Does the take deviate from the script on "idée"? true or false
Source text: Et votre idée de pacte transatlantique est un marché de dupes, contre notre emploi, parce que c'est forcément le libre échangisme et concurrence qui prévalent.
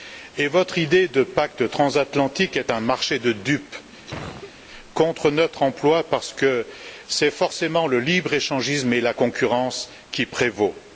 false